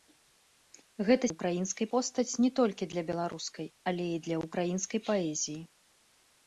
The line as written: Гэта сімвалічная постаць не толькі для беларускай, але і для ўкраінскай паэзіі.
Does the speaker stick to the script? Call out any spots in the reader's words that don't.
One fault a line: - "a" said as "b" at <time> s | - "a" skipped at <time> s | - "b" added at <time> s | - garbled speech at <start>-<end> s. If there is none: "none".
- "сімвалічная" said as "ўкраінскай" at 1.3 s